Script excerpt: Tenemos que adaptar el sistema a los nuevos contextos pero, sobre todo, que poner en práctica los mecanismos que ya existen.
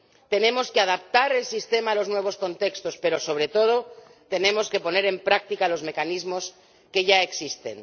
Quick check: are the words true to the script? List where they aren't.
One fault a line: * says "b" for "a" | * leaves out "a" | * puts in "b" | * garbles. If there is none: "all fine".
* puts in "tenemos"